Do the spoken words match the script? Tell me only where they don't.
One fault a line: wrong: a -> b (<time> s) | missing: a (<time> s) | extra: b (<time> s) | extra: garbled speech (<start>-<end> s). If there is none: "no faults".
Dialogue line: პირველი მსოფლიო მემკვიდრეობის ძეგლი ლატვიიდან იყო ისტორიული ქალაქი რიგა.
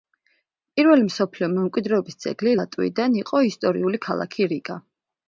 no faults